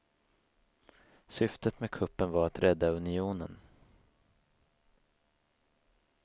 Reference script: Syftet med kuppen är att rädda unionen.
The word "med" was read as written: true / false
true